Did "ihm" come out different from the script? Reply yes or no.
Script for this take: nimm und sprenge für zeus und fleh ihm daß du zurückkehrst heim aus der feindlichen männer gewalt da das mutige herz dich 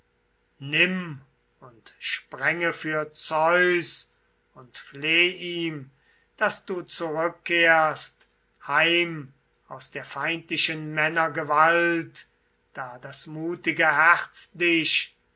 no